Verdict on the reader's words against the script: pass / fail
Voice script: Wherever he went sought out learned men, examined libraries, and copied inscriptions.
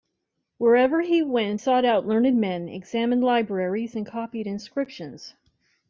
pass